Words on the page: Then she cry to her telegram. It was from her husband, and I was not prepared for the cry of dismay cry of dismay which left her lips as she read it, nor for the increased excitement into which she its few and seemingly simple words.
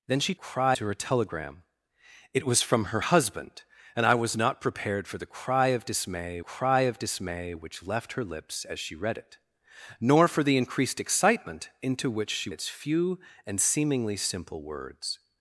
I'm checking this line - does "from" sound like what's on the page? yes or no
yes